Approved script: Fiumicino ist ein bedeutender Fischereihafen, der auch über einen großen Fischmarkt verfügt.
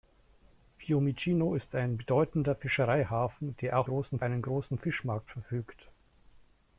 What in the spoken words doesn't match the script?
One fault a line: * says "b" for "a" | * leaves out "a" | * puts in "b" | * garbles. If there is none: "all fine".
* says "großen" for "über"